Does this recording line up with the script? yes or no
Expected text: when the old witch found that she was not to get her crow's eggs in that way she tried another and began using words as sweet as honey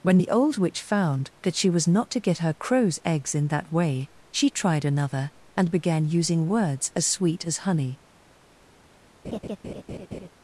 yes